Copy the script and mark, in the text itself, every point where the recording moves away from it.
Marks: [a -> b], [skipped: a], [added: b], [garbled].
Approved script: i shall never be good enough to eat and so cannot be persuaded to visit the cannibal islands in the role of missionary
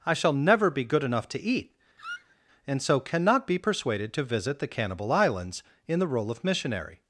i shall never be good enough to eat and so cannot be persuaded to visit the cannibal islands in the role of missionary